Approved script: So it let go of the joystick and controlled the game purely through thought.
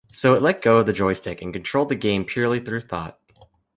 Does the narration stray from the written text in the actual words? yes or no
no